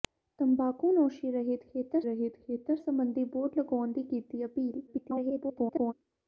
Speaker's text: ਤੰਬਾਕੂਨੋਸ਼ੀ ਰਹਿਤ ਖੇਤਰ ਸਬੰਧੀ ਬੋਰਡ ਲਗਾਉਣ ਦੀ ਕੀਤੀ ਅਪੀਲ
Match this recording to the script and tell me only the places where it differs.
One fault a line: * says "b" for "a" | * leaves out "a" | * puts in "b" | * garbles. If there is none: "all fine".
* puts in "ਰਹਿਤ ਖੇਤਰ"
* garbles